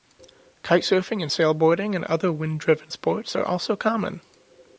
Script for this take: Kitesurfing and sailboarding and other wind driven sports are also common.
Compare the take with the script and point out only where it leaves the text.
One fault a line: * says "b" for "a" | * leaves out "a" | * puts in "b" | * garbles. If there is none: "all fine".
all fine